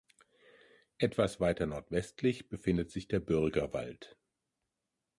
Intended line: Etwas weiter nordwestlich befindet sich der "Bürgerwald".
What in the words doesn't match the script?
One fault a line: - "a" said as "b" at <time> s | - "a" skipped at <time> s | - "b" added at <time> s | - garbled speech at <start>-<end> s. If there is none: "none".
none